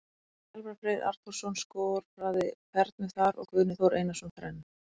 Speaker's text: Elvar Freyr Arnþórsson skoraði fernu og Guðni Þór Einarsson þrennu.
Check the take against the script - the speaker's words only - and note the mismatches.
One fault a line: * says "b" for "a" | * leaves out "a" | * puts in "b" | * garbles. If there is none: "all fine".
* puts in "þar"